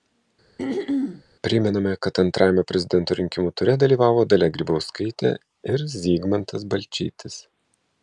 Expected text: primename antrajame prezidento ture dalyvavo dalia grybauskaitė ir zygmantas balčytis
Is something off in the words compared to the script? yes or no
yes